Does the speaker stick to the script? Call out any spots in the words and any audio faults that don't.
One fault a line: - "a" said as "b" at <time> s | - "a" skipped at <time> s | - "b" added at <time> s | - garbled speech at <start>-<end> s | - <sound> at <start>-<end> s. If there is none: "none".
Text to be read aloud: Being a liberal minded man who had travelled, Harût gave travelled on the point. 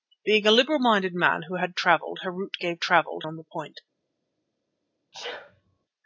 - sneeze at 5.1-5.8 s